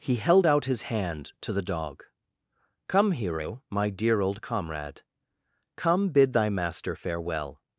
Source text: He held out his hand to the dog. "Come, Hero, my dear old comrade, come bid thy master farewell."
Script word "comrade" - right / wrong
right